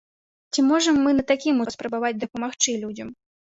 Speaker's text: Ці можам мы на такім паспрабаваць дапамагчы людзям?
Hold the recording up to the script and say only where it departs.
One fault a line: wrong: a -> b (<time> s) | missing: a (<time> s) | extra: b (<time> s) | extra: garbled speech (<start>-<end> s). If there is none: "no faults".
no faults